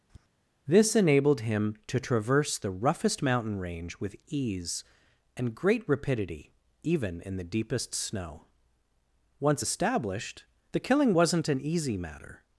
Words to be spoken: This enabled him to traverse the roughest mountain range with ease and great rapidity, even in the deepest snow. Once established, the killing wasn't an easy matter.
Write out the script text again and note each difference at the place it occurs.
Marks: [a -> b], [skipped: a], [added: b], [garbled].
This enabled him to traverse the roughest mountain range with ease and great rapidity, even in the deepest snow. Once established, the killing wasn't an easy matter.